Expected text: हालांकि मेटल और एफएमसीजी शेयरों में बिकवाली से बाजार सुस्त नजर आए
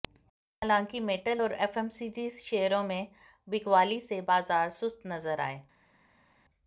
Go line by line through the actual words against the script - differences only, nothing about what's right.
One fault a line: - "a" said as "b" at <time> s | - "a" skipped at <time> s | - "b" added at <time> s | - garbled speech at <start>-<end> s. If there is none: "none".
none